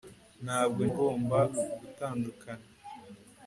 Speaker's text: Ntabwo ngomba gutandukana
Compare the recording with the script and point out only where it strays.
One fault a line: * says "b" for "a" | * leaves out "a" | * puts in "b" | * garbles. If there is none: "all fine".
all fine